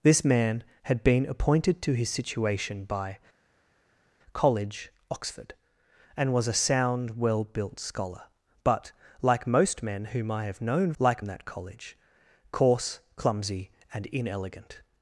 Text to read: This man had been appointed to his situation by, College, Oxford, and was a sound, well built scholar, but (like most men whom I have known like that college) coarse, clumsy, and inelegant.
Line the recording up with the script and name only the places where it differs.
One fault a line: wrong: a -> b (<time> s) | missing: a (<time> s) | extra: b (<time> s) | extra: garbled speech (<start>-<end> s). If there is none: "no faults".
no faults